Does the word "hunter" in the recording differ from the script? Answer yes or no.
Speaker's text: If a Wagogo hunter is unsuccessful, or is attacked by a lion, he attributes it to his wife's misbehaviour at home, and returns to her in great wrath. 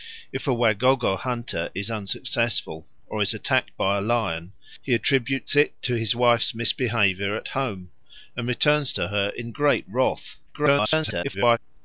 no